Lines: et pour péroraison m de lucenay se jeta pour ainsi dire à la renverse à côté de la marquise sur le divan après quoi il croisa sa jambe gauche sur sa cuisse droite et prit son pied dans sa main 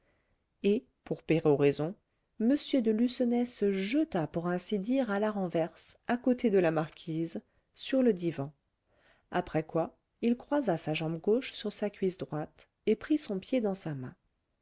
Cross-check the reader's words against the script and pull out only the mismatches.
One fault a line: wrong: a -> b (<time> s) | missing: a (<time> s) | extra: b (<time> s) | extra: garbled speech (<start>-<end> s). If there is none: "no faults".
no faults